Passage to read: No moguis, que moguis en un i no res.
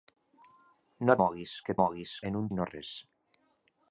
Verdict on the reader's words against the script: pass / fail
pass